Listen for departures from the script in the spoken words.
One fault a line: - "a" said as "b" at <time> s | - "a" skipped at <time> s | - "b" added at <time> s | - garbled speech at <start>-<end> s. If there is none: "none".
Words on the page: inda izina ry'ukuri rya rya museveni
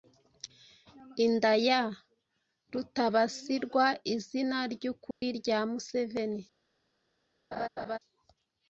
- "ya rutabasirwa" added at 1.7 s
- "rya" skipped at 5.6 s